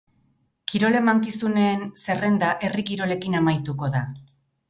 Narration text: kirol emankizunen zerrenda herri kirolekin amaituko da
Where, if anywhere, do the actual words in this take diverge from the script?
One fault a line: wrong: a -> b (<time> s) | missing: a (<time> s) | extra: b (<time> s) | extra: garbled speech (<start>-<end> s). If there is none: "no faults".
no faults